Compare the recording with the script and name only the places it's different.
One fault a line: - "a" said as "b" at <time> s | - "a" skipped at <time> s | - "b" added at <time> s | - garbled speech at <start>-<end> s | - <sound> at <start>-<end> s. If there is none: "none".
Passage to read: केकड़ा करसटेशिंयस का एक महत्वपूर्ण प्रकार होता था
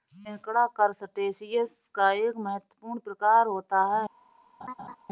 - "था" said as "है" at 3.9 s
- laugh at 4.6-5.0 s